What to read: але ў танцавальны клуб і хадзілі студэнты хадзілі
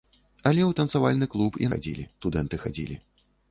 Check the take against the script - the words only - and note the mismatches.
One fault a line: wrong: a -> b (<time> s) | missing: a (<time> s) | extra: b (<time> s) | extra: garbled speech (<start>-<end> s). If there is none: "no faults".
no faults